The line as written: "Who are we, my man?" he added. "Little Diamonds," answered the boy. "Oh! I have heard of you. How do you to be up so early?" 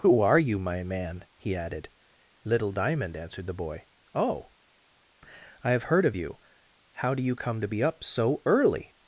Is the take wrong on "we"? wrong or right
wrong